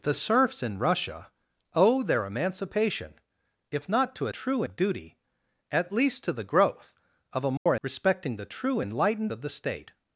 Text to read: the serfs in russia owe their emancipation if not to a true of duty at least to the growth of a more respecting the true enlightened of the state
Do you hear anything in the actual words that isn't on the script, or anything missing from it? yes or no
no